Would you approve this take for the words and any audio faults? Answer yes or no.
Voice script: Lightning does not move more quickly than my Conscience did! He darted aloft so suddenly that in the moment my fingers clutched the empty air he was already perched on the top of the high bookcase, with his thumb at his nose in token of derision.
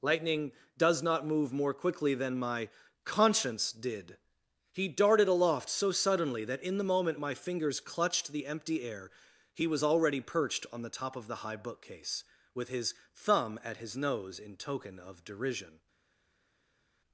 yes